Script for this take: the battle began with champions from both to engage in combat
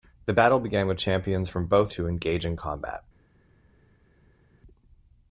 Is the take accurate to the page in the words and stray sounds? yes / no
yes